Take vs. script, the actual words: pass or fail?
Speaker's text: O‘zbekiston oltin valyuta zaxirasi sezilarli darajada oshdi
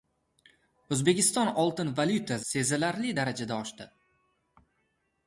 fail